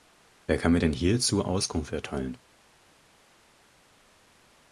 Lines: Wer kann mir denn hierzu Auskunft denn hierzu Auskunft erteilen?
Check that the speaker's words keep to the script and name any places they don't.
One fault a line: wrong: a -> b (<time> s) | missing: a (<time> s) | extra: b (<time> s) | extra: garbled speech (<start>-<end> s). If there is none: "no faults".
missing: denn hierzu Auskunft (1.9 s)